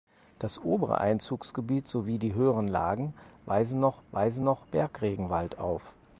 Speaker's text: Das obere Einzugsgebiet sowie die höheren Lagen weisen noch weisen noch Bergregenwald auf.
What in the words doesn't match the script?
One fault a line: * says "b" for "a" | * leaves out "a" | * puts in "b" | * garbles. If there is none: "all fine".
all fine